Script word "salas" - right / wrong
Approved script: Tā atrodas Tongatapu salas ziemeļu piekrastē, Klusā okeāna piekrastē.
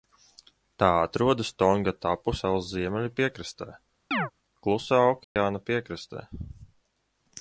right